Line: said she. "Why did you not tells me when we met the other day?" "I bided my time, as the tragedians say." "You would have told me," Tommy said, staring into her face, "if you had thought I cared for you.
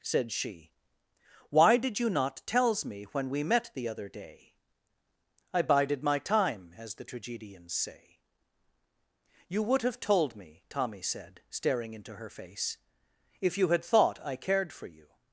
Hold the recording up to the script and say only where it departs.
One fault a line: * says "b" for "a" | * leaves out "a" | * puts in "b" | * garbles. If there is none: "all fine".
all fine